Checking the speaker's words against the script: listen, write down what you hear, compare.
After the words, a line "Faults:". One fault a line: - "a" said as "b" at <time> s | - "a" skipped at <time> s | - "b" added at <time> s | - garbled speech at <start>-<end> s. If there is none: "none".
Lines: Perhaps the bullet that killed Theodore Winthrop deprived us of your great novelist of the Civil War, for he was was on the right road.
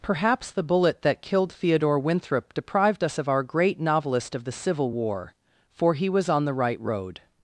Perhaps the bullet that killed Theodore Winthrop deprived us of our great novelist of the Civil War, for he was on the right road.
Faults:
- "your" said as "our" at 3.3 s
- "was" skipped at 6.3 s